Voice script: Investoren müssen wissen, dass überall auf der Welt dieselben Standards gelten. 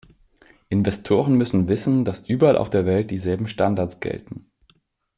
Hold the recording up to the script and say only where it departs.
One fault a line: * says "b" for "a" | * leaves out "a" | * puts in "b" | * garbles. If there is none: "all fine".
all fine